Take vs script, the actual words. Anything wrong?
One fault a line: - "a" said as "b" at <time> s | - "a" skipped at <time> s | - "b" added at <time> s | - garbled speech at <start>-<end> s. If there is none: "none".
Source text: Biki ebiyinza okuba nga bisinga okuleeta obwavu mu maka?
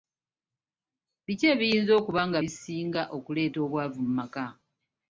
none